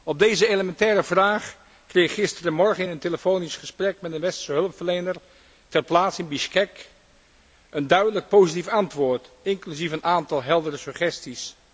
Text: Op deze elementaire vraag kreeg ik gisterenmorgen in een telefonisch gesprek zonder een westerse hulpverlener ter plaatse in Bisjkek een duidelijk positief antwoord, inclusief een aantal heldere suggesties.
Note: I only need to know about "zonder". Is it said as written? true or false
false